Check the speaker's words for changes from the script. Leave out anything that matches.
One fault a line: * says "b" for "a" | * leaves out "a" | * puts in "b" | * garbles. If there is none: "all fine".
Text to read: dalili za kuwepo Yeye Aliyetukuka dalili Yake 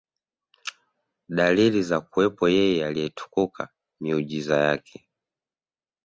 * says "miujiza" for "dalili"